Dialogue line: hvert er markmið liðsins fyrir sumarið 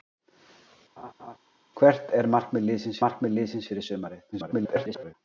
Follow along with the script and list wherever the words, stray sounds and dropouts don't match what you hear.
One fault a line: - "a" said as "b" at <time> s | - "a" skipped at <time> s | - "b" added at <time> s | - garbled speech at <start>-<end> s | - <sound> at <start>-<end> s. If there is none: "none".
- laugh at 1.0-1.4 s
- "markmið liðsins" added at 3.0 s
- garbled speech at 4.3-5.1 s